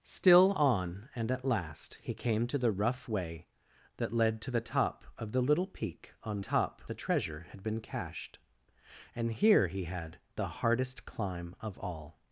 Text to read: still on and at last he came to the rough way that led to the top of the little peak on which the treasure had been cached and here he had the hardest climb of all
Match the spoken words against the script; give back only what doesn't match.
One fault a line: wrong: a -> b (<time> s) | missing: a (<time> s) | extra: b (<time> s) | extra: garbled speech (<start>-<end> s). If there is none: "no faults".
wrong: which -> top (6.4 s)